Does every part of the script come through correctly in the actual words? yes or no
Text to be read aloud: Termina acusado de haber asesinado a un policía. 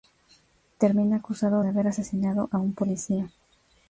yes